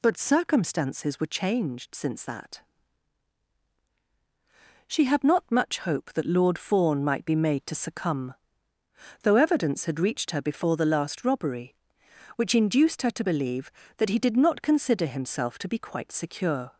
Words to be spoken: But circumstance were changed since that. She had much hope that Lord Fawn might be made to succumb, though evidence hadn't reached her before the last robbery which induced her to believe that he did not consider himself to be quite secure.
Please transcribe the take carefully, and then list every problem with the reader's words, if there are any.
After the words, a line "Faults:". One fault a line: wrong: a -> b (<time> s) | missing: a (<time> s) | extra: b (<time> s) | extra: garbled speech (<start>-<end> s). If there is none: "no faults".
But circumstances were changed since that. She had not much hope that Lord Fawn might be made to succumb, though evidence had reached her before the last robbery which induced her to believe that he did not consider himself to be quite secure.
Faults:
wrong: circumstance -> circumstances (0.2 s)
extra: not (5.2 s)
wrong: hadn't -> had (9.8 s)